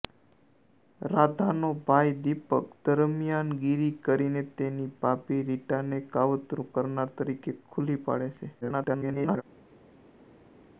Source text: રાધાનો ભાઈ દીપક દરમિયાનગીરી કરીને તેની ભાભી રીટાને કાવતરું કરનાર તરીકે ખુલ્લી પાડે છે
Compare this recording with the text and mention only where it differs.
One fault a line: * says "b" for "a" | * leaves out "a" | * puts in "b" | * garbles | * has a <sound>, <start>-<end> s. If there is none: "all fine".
* garbles